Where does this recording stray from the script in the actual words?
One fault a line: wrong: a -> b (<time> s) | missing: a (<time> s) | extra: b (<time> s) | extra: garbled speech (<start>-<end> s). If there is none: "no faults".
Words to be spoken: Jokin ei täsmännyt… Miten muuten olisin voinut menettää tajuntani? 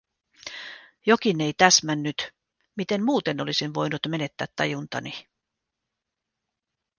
no faults